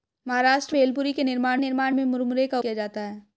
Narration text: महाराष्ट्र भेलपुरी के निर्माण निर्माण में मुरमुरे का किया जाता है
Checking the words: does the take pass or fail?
pass